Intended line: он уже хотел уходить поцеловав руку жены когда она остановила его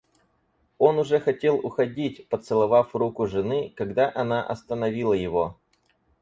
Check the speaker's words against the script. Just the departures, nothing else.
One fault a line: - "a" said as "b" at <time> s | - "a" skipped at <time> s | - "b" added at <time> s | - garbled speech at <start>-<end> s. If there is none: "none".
none